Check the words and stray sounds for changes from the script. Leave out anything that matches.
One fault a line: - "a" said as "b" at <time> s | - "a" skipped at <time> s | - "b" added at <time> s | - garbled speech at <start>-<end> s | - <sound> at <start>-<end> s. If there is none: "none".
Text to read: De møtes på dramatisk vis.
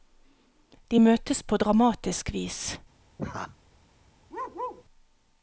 - laugh at 3.2-3.6 s
- bark at 4.3-4.8 s